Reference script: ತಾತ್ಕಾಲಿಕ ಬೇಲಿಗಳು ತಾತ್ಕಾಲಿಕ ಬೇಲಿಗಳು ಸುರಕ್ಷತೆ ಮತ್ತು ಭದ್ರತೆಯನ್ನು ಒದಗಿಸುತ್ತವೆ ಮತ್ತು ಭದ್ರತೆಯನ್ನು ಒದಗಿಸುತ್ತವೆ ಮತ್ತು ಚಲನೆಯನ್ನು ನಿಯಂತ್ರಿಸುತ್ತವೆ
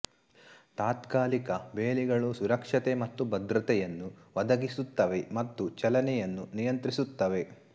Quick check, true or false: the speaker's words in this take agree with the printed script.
false